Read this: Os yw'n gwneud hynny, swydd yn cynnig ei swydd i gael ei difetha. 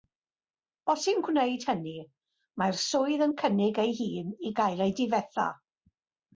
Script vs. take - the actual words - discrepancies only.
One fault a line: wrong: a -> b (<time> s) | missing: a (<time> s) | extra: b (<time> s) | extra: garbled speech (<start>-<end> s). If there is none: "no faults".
extra: mae'r (2.6 s)
wrong: swydd -> hun (4.0 s)